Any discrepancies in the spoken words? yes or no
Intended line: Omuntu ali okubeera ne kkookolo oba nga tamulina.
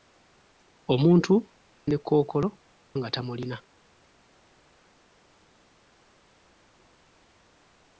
yes